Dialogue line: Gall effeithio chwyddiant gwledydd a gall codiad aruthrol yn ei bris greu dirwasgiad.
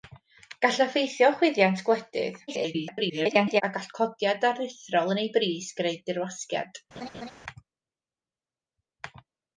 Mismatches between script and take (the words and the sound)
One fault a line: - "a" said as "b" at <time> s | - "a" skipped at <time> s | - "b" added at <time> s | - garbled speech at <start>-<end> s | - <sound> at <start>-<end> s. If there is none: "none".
- garbled speech at 2.5-3.6 s
- laugh at 7.0-7.3 s